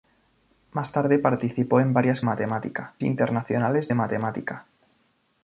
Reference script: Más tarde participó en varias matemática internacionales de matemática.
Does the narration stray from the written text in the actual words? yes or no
no